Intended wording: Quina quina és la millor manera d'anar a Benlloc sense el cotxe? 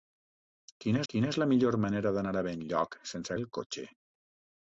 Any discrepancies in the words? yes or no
no